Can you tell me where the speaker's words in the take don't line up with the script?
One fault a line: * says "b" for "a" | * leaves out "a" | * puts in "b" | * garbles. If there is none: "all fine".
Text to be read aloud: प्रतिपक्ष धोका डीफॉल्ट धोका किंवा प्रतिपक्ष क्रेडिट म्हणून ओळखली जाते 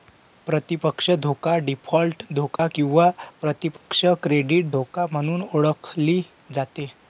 * puts in "धोका"